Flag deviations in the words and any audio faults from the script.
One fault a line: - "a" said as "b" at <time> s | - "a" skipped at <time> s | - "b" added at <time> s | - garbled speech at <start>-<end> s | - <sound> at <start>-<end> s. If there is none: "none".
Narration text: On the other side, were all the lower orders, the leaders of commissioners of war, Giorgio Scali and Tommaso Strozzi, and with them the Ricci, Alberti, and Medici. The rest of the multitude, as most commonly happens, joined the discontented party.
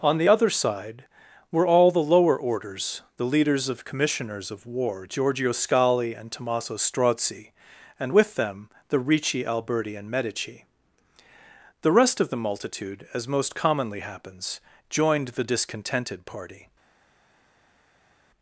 none